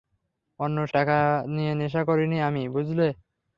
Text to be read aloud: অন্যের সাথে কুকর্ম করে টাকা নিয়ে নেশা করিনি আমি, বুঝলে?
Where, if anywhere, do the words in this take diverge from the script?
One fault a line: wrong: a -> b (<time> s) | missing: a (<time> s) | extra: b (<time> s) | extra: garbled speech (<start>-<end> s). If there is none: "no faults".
missing: সাথে কুকর্ম করে (0.9 s)